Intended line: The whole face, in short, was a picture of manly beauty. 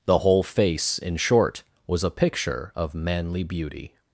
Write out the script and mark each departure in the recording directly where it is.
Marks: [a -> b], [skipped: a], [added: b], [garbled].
The whole face, in short, was a picture of manly beauty.